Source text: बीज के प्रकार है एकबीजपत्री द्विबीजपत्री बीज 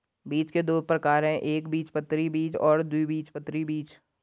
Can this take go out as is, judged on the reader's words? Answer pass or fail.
fail